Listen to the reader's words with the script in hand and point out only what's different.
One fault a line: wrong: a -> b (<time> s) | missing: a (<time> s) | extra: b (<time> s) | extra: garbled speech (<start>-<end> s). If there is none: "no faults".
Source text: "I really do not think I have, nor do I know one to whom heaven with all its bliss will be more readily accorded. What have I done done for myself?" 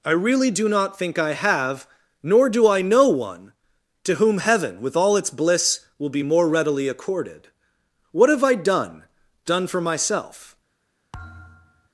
no faults